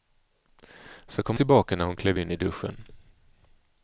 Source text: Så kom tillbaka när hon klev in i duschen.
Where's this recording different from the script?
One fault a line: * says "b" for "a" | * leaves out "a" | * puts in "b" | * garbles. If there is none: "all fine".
all fine